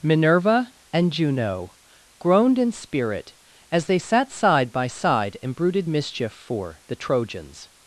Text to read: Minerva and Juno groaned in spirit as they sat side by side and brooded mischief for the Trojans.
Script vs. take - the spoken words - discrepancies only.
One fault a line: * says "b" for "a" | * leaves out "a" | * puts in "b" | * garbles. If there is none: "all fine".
all fine